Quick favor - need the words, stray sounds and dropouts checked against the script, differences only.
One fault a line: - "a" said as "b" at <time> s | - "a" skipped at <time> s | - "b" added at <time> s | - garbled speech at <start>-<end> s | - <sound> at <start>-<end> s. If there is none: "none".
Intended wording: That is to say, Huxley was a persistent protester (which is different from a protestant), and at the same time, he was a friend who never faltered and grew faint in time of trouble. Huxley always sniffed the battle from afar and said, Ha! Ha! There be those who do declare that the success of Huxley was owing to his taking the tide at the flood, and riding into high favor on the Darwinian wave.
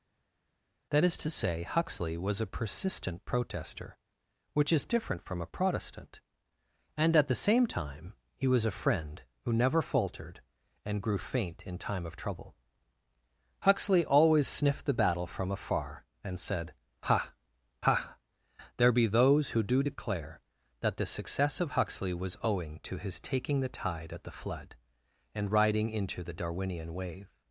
- "high favor on" skipped at 26.2 s